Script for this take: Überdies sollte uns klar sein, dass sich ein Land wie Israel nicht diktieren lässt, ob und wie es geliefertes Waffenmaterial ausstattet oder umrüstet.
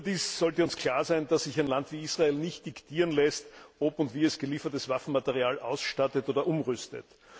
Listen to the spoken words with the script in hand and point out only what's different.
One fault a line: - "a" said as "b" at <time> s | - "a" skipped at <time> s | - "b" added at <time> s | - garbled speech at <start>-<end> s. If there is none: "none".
none